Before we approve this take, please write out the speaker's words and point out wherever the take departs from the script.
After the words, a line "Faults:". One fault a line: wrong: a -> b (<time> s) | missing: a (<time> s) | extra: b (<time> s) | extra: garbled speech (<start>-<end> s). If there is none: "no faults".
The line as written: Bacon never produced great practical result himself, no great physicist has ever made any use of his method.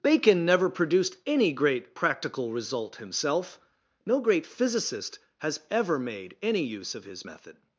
Bacon never produced any great practical result himself, no great physicist has ever made any use of his method.
Faults:
extra: any (1.3 s)